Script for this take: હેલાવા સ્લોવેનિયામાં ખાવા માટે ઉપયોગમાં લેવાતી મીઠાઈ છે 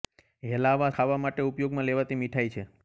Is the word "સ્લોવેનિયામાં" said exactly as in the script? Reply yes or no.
no